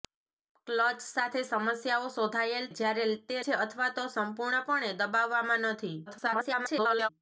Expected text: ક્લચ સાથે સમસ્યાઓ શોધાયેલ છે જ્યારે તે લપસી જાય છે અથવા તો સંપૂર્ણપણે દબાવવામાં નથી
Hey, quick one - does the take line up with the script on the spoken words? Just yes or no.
no